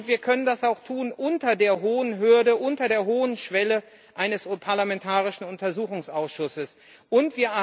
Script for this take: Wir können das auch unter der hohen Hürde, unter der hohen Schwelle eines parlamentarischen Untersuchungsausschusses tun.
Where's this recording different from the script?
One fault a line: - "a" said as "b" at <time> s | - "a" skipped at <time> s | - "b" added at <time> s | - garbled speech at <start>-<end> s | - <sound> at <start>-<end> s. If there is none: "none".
none